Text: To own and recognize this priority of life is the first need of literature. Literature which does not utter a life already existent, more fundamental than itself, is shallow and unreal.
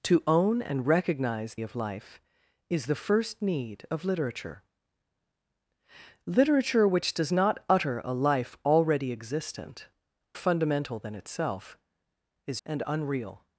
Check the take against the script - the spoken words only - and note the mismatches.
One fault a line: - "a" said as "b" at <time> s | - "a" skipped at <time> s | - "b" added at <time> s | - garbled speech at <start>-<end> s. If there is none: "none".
- "this priority" skipped at 1.6 s
- "more" skipped at 9.9 s
- "shallow" skipped at 12.6 s